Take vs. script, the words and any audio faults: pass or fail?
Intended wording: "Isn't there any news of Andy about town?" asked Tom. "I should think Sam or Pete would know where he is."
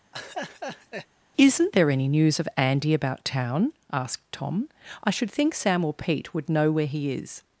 fail